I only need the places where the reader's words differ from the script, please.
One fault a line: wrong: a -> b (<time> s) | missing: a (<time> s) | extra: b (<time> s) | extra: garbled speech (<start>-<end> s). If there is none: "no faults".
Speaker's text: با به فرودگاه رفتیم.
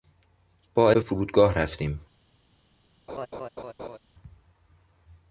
no faults